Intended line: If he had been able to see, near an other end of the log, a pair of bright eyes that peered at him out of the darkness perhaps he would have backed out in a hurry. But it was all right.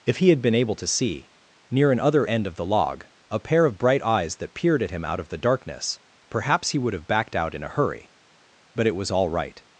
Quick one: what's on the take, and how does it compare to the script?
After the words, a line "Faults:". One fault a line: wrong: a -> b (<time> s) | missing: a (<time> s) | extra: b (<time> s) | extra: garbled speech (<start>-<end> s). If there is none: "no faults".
If he had been able to see, near an other end of the log, a pair of bright eyes that peered at him out of the darkness perhaps he would have backed out in a hurry. But it was all right.
Faults:
no faults